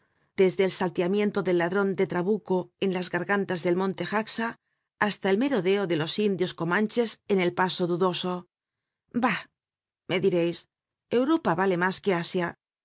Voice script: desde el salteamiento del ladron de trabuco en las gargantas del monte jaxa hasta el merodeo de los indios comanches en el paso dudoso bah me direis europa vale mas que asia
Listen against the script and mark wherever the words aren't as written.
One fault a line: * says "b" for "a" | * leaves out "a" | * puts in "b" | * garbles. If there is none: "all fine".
all fine